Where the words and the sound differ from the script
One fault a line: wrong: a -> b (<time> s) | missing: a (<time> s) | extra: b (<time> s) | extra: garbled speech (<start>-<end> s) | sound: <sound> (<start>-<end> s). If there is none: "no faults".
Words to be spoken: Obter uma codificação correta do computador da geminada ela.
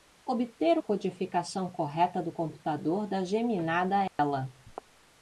missing: uma (0.8 s)
sound: dropout (4.1-4.2 s)